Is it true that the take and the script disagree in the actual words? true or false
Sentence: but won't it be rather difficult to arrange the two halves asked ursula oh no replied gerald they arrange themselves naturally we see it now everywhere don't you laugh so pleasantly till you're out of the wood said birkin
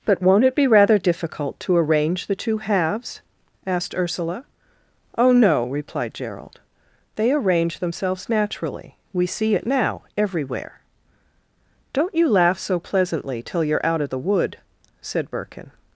false